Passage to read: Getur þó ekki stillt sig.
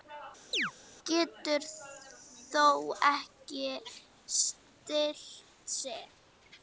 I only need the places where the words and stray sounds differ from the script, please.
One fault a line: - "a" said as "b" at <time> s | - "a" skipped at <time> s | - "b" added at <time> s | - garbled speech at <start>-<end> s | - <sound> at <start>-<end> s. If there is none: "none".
- chirp at 0.5-0.7 s